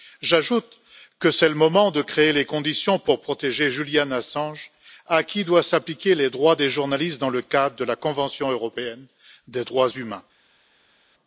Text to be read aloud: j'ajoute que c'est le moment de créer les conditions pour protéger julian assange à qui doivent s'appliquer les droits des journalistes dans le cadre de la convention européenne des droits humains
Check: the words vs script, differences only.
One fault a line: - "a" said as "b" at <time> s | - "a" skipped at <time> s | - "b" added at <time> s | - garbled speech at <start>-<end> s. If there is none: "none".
none